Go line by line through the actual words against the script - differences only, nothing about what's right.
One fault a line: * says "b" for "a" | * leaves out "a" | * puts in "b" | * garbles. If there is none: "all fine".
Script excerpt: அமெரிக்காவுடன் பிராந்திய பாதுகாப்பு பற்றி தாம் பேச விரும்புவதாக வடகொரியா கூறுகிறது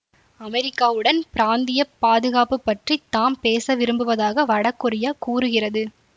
all fine